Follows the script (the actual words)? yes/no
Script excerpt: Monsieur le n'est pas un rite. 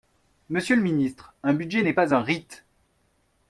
no